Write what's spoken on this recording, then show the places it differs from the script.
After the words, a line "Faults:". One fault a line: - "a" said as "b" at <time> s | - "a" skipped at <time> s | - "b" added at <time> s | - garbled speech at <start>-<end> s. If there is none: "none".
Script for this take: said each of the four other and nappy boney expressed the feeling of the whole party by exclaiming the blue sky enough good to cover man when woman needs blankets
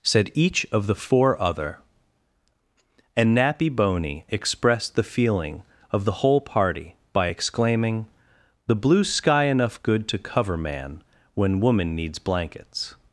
said each of the four other and nappy boney expressed the feeling of the whole party by exclaiming the blue sky enough good to cover man when woman needs blankets
Faults:
none